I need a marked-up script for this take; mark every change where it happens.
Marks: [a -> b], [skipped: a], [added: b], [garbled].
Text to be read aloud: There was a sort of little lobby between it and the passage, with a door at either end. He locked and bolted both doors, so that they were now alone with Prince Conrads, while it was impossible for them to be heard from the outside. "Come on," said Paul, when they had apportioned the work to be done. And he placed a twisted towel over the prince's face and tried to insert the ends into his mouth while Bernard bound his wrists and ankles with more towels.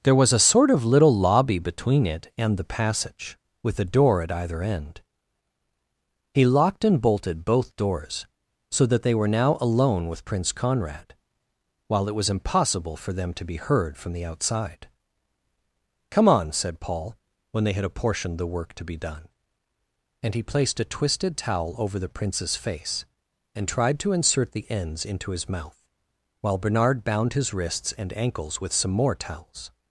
There was a sort of little lobby between it and the passage, with a door at either end. He locked and bolted both doors, so that they were now alone with Prince [Conrads, -> Conrad] while it was impossible for them to be heard from the outside. "Come on," said Paul, when they had apportioned the work to be done. And he placed a twisted towel over the prince's face and tried to insert the ends into his mouth while Bernard bound his wrists and ankles with [added: some] more towels.